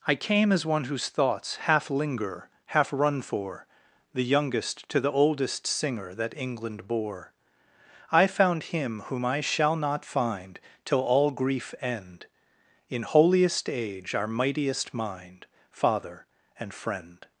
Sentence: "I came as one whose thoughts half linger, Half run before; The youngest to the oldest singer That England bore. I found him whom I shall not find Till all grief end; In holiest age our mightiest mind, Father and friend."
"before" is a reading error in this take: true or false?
true